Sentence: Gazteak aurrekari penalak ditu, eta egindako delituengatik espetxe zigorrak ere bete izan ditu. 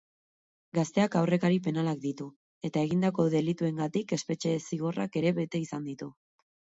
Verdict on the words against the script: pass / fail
pass